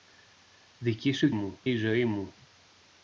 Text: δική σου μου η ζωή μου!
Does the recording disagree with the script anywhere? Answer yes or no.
no